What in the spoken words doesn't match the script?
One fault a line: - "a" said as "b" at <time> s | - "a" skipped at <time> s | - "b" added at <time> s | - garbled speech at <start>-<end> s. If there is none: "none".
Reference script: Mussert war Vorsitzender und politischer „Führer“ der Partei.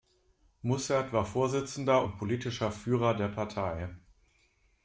none